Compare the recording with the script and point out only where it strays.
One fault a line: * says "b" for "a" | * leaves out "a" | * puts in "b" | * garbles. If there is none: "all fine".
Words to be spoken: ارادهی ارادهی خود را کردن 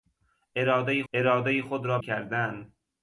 all fine